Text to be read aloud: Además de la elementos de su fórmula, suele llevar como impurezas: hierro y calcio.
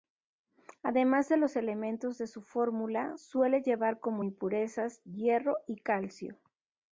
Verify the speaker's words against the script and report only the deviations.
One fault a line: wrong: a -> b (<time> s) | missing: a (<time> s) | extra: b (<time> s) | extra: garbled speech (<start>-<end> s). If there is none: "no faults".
wrong: la -> los (1.4 s)